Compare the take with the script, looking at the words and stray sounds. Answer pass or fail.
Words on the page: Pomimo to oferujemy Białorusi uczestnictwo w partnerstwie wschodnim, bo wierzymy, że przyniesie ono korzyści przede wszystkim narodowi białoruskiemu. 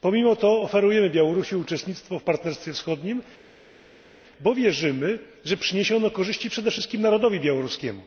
pass